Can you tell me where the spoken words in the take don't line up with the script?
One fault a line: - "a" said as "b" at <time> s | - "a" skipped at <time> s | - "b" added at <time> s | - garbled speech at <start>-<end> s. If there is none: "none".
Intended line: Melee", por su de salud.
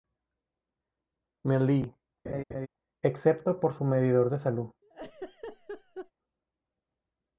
- "excepto" added at 3.0 s
- "medidor" added at 3.8 s